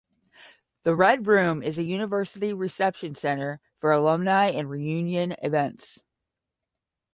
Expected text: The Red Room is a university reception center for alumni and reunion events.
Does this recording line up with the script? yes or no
yes